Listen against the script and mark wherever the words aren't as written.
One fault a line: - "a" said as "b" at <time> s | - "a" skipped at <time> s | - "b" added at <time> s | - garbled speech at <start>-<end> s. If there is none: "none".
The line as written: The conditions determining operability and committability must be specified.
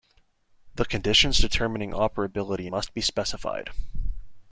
- "and committability" skipped at 2.7 s